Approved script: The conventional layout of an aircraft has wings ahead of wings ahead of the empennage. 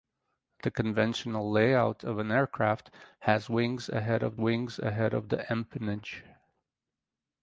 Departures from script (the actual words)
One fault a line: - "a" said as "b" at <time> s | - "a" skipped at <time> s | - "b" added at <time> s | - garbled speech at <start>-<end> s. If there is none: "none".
none